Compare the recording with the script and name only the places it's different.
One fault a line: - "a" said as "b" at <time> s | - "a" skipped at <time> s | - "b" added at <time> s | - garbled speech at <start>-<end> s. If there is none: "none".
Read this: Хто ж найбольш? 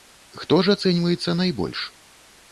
- "ацэньваецца" added at 0.8 s